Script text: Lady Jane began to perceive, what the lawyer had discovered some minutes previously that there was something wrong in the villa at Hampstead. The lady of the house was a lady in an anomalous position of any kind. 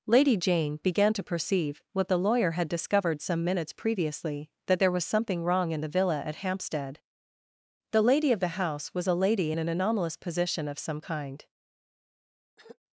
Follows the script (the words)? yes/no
no